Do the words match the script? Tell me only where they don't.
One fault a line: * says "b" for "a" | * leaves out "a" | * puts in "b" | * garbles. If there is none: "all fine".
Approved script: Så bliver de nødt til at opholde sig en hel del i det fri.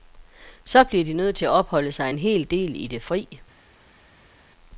all fine